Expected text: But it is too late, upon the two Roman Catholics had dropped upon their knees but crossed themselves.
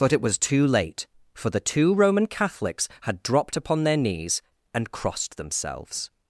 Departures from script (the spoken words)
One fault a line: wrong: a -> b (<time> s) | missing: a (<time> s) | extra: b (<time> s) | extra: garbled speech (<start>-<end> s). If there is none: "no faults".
wrong: is -> was (0.2 s)
wrong: upon -> for (1.3 s)
wrong: but -> and (4.7 s)